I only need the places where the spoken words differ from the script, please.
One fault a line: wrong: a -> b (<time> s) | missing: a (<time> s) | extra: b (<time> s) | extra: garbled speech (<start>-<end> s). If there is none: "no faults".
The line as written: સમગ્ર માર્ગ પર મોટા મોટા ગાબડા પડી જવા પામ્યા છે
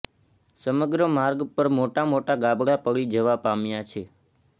no faults